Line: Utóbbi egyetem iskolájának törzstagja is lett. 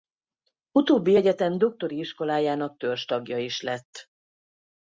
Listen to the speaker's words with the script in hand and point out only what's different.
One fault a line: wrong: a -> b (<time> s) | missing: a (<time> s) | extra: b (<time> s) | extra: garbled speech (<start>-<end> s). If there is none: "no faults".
extra: doktori (1.6 s)